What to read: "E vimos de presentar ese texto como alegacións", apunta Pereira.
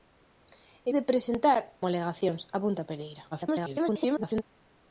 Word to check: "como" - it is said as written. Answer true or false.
false